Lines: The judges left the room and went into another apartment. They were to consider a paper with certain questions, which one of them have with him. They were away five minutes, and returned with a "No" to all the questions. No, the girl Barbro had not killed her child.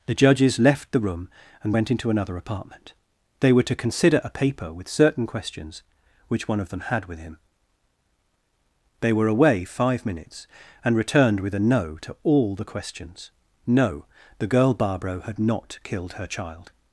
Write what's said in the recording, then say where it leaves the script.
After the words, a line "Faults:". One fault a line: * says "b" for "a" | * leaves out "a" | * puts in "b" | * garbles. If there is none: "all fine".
The judges left the room and went into another apartment. They were to consider a paper with certain questions, which one of them had with him. They were away five minutes, and returned with a "No" to all the questions. No, the girl Barbro had not killed her child.
Faults:
* says "had" for "have"